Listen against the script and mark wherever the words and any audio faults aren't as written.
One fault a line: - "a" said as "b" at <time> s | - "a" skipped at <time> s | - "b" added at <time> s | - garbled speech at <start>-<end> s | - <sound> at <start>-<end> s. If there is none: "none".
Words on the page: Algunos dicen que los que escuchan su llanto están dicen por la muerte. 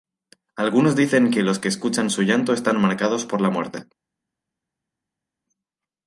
- "dicen" said as "marcados" at 2.8 s